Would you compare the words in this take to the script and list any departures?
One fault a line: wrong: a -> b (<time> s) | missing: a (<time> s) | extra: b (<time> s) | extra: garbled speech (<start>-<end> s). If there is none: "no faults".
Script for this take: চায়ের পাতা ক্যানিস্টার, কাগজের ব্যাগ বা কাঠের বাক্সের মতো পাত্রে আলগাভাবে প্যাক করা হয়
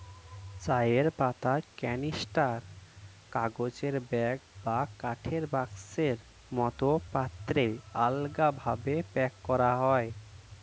no faults